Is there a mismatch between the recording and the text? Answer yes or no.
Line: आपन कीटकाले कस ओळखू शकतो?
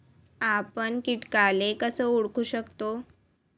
no